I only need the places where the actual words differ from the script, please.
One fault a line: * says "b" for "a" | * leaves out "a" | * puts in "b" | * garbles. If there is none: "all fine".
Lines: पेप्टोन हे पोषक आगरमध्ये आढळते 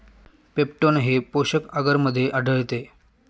all fine